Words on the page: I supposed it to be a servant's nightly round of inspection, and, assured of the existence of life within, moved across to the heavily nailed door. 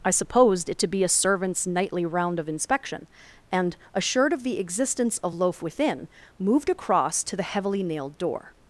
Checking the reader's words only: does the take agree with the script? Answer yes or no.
no